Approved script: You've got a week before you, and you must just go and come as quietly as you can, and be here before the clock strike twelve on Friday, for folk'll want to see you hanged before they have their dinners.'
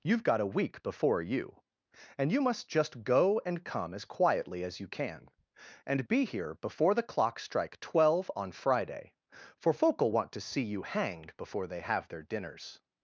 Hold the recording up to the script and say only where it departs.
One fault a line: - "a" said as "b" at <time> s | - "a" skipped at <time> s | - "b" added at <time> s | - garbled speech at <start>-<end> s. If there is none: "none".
none